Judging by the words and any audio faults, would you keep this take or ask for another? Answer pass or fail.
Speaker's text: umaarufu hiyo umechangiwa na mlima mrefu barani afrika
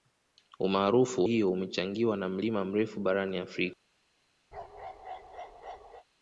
fail